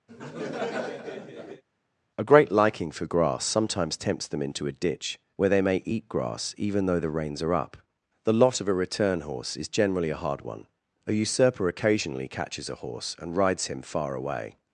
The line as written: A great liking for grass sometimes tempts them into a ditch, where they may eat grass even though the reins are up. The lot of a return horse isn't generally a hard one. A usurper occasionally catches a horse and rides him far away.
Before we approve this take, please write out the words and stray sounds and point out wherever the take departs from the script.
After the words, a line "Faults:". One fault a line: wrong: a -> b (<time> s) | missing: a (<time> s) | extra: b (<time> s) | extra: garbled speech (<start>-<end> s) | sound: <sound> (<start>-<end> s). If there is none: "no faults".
A great liking for grass sometimes tempts them into a ditch, where they may eat grass even though the reins are up. The lot of a return horse is generally a hard one. A usurper occasionally catches a horse and rides him far away.
Faults:
sound: laugh (0.1-1.6 s)
wrong: isn't -> is (9.6 s)